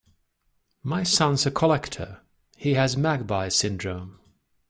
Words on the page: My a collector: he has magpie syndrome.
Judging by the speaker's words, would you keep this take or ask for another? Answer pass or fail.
fail